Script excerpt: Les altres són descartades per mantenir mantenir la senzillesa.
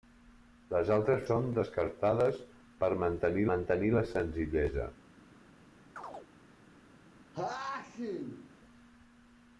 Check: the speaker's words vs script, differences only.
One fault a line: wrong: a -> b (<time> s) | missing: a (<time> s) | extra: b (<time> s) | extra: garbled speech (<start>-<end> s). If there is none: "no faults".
no faults